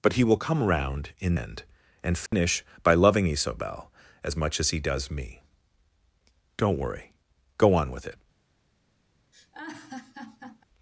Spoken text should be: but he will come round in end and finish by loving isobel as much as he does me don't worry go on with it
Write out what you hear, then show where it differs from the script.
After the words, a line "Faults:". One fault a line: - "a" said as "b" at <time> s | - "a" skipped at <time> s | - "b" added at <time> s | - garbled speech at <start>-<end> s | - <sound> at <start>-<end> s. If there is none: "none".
but he will come round in end and finish by loving isobel as much as he does me don't worry go on with it
Faults:
- dropout at 2.3-2.3 s
- laugh at 9.3-10.6 s